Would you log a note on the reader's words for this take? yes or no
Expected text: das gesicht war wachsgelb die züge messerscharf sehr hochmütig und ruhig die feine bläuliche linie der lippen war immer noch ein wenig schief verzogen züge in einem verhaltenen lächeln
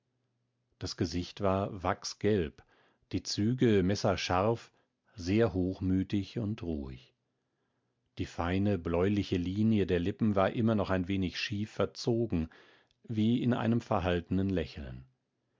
yes